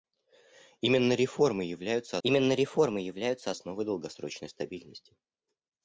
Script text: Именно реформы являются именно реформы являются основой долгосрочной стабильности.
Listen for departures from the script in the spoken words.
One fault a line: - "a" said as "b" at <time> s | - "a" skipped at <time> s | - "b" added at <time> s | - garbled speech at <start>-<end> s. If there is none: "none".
none